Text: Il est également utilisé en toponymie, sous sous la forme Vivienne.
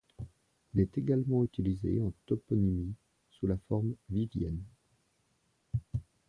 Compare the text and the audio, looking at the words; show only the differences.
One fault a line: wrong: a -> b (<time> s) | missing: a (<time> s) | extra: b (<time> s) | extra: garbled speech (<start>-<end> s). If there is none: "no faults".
missing: sous (3.5 s)